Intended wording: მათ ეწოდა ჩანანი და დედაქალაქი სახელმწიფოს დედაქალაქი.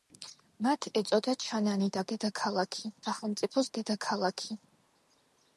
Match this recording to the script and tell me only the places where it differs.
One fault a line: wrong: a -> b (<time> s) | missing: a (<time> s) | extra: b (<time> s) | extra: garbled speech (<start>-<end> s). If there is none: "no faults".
no faults